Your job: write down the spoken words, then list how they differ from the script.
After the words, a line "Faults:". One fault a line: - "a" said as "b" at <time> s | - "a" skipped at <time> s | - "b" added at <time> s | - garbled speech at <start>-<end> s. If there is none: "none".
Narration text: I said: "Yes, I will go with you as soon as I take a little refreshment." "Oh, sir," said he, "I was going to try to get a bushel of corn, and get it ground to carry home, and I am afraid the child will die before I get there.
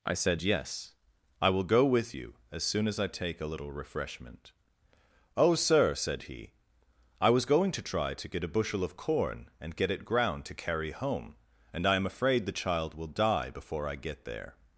I said: "Yes, I will go with you as soon as I take a little refreshment." "Oh, sir," said he, "I was going to try to get a bushel of corn, and get it ground to carry home, and I am afraid the child will die before I get there.
Faults:
none